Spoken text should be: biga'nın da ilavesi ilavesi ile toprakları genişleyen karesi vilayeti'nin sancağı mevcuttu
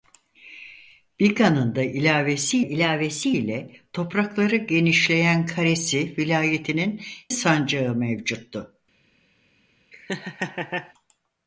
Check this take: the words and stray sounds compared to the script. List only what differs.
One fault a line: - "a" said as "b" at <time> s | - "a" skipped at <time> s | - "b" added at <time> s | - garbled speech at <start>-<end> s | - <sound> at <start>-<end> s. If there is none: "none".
- laugh at 9.9-10.9 s